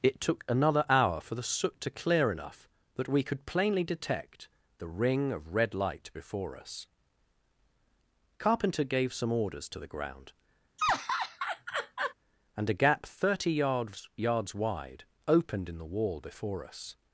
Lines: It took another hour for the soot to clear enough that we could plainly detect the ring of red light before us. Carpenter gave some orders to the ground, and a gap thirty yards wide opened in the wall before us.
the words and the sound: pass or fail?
fail